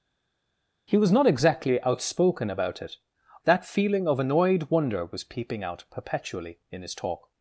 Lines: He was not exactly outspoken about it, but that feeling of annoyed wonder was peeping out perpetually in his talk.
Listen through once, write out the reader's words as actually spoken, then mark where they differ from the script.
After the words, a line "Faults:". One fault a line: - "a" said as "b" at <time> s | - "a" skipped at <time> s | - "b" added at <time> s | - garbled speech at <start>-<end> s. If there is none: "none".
He was not exactly outspoken about it, that feeling of annoyed wonder was peeping out perpetually in his talk.
Faults:
- "but" skipped at 3.0 s